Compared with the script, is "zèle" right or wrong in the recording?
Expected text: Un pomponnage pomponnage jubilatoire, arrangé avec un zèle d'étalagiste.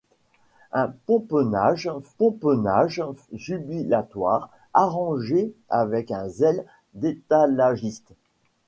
right